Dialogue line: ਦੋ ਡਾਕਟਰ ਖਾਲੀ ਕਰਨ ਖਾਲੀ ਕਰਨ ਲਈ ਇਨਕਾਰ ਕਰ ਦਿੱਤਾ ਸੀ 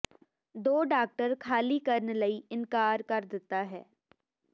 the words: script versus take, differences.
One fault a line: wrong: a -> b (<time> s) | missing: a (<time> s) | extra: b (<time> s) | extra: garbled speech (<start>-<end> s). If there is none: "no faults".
missing: ਖਾਲੀ ਕਰਨ (2.1 s)
wrong: ਸੀ -> ਹੈ (3.7 s)